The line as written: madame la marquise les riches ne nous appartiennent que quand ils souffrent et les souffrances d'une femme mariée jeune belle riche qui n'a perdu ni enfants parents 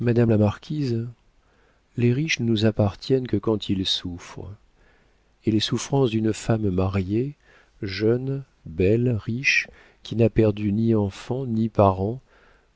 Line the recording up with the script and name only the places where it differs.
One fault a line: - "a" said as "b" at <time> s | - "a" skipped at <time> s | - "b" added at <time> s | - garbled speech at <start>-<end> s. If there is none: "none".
- "ni" added at 11.5 s